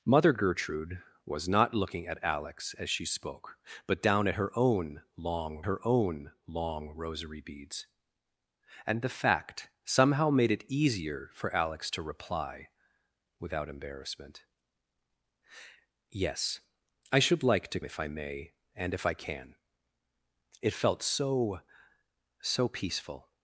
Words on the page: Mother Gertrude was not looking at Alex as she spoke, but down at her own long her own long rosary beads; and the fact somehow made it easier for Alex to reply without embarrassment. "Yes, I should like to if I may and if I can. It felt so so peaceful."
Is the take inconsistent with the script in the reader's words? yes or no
no